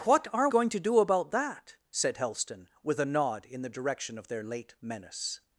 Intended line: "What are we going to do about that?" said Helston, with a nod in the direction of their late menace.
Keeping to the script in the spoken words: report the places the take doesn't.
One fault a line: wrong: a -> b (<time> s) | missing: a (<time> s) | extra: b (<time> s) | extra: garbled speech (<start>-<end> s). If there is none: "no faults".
missing: we (0.5 s)